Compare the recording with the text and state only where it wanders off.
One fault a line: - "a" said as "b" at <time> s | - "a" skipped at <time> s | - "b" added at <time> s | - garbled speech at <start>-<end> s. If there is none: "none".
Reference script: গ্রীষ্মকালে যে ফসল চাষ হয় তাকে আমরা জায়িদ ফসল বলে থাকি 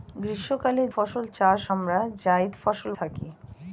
- "যে" skipped at 0.8 s
- "হয় তাকে" skipped at 1.6 s
- "বলে" skipped at 2.9 s